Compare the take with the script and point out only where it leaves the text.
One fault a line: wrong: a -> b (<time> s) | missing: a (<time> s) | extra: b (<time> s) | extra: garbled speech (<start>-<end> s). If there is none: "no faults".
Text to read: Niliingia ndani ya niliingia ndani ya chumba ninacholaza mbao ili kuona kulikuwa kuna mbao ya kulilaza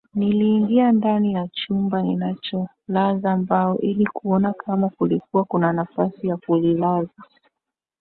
missing: niliingia ndani ya (1.5 s)
extra: kama (4.5 s)
wrong: mbao -> nafasi (5.7 s)